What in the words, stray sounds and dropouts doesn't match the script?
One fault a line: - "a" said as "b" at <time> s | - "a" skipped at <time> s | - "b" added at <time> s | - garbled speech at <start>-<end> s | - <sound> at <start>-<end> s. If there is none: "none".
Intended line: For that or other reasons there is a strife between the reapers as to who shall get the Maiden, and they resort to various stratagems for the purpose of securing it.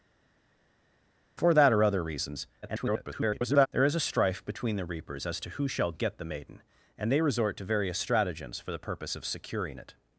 - garbled speech at 2.6-3.7 s